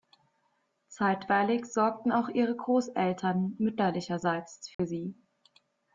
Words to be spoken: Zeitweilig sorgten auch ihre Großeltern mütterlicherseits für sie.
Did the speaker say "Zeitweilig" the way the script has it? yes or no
yes